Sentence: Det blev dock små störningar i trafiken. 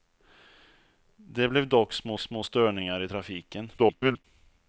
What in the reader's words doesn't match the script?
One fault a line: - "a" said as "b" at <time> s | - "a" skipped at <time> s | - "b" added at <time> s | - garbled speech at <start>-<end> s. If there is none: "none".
- "små" added at 2.2 s
- garbled speech at 3.8-4.2 s